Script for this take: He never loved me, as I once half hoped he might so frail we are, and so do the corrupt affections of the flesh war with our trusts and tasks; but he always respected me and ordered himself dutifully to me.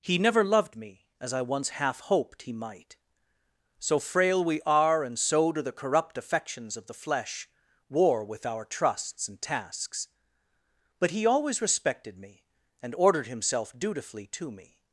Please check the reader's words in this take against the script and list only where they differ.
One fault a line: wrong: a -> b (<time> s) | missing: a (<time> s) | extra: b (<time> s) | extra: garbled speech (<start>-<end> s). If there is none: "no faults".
no faults